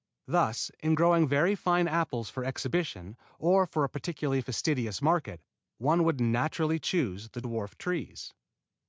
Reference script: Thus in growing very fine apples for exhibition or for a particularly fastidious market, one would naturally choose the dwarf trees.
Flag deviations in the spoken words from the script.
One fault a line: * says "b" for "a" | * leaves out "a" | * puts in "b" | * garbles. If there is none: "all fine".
all fine